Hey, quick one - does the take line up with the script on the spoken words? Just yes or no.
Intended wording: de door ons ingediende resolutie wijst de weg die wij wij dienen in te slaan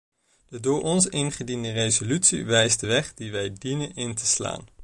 no